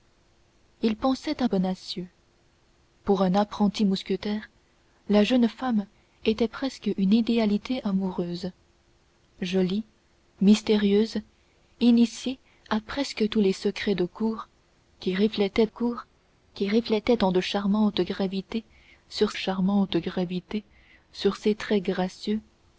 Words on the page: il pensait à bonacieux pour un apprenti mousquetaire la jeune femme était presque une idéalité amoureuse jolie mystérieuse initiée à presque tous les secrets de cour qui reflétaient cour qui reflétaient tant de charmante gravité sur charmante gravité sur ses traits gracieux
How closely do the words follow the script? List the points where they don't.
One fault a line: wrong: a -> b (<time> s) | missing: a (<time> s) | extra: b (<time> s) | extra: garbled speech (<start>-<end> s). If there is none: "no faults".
no faults